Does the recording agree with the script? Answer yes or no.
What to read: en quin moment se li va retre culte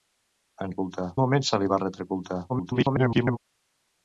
no